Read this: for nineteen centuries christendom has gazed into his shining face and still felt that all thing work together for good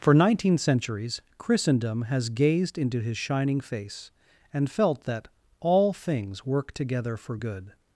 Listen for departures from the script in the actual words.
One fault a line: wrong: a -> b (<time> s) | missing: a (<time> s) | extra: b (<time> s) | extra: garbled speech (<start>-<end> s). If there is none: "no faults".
missing: still (4.7 s)
wrong: thing -> things (5.9 s)